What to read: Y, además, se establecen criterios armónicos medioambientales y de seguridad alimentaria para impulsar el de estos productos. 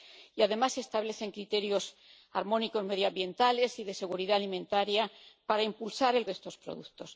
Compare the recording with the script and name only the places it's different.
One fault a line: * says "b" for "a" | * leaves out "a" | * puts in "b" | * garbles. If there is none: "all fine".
all fine